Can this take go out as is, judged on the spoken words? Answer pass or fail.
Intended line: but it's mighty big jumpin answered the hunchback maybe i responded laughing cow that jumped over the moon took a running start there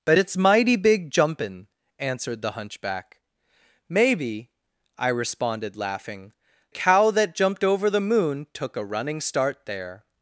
pass